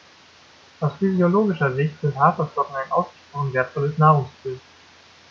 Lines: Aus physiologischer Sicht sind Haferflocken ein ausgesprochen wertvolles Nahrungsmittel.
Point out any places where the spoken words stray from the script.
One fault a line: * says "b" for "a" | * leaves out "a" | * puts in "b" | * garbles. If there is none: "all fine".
all fine